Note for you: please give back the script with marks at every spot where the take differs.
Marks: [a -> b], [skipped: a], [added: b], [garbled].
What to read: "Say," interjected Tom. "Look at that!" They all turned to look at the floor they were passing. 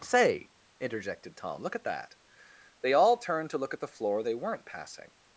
"Say," interjected Tom. "Look at that!" They all turned to look at the floor they [were -> weren't] passing.